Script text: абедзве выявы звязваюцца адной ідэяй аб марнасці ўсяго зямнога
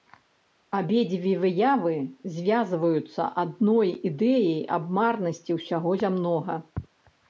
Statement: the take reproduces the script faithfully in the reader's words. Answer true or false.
true